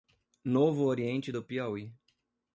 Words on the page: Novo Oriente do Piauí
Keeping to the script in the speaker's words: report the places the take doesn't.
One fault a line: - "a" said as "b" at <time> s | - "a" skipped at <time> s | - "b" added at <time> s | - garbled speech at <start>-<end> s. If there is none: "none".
none